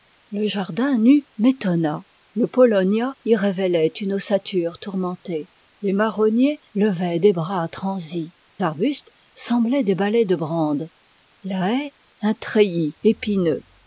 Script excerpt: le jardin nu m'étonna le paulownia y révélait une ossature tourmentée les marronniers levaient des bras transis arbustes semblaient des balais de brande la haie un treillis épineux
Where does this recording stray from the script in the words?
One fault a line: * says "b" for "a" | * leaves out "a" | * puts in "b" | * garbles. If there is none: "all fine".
all fine